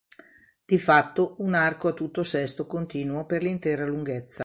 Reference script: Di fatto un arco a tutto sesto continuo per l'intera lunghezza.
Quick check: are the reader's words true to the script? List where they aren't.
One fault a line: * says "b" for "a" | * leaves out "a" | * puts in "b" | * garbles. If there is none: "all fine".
all fine